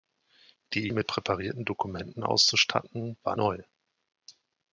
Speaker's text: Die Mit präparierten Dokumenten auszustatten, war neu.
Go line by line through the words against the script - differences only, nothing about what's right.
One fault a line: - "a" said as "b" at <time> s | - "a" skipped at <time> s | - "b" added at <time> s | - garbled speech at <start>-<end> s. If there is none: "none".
none